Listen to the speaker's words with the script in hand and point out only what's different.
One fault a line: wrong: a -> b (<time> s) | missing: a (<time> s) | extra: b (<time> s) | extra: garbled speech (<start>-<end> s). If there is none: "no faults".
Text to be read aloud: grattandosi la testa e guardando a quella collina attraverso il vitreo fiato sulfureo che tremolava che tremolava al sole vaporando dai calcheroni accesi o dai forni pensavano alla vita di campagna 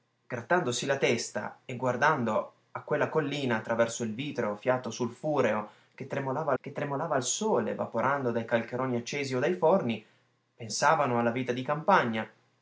no faults